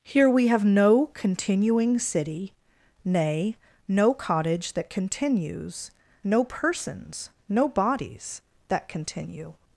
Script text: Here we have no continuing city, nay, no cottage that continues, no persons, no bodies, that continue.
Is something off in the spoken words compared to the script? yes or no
no